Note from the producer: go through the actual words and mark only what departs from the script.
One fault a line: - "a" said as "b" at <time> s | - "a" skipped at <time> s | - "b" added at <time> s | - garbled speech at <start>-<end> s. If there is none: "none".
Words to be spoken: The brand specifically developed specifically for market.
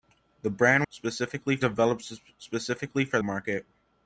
none